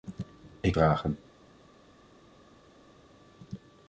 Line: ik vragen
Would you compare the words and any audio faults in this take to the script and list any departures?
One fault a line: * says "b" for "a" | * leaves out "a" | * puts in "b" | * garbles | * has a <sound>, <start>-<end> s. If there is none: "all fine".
all fine